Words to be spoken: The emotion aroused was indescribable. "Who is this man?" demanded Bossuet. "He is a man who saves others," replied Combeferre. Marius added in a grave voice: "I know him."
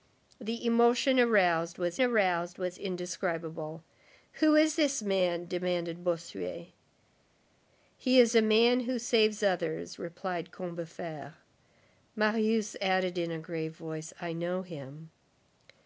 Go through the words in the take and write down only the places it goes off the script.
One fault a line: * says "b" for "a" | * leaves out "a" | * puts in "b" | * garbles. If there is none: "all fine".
* puts in "aroused was"